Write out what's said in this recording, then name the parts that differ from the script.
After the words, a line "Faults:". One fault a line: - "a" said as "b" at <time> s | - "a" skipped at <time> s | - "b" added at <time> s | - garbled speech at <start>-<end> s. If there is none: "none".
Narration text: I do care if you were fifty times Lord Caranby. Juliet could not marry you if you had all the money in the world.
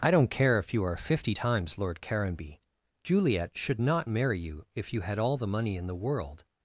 I don't care if you are fifty times Lord Caranby. Juliet should not marry you if you had all the money in the world.
Faults:
- "do" said as "don't" at 0.1 s
- "were" said as "are" at 0.8 s
- "could" said as "should" at 3.6 s